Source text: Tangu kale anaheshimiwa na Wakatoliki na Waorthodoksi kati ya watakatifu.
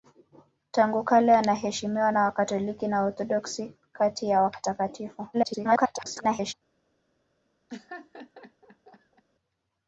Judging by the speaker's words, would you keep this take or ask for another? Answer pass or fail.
fail